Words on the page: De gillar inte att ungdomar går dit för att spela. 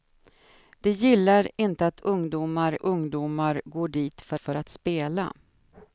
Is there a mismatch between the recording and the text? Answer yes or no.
yes